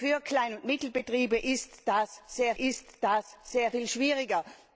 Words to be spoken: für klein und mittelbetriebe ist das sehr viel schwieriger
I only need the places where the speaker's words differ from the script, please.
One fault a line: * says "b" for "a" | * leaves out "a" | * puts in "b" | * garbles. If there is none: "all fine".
* puts in "ist das sehr"